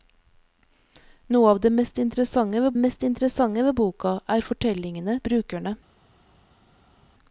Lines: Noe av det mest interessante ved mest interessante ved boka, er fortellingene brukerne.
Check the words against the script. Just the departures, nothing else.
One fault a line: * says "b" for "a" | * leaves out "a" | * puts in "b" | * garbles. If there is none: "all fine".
all fine